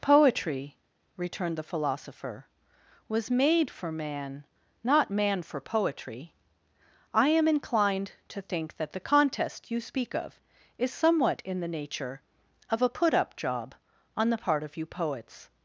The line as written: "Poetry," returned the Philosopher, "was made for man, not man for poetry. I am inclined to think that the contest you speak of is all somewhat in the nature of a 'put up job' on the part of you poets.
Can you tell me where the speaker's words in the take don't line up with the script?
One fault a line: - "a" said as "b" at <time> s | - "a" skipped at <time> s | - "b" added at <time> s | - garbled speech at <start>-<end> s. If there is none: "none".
- "all" skipped at 10.9 s